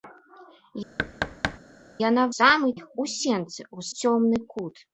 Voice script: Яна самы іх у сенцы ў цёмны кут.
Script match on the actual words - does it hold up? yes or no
yes